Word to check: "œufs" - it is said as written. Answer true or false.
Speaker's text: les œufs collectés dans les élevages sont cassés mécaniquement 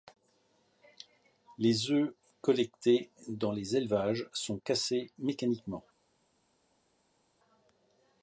true